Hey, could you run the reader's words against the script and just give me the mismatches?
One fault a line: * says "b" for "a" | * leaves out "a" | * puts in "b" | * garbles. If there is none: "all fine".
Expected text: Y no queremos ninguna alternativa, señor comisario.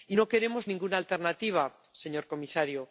all fine